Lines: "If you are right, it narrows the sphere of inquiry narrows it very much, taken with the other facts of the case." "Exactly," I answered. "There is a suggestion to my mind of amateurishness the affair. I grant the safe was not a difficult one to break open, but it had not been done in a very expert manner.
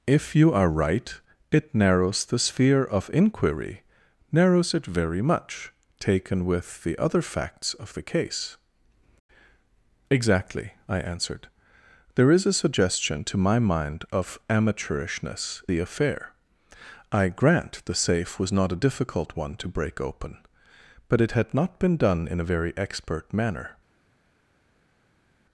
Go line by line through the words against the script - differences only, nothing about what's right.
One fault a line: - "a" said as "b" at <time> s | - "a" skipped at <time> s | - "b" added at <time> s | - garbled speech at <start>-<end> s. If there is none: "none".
none